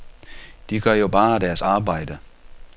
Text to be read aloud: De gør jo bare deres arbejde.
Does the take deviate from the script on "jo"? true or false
false